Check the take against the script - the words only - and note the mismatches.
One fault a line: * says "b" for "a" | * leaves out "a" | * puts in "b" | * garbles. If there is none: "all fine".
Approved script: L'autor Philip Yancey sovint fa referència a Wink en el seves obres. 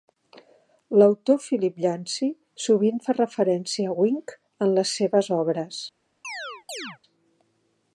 * says "les" for "el"